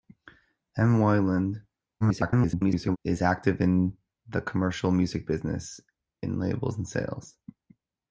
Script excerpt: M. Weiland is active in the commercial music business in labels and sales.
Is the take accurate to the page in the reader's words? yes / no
no